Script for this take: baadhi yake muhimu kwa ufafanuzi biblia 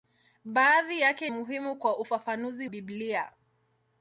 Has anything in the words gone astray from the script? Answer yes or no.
no